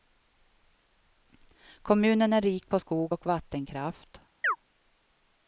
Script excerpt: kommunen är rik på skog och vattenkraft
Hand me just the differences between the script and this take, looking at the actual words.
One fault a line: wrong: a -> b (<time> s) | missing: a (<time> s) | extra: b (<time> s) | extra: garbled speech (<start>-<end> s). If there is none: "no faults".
no faults